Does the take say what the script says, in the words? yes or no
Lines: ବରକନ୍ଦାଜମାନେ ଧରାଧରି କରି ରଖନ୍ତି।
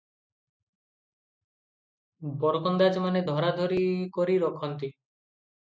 yes